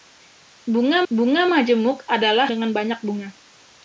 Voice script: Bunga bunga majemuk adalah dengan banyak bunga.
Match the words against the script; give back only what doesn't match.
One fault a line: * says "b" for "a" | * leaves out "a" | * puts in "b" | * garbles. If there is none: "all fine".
all fine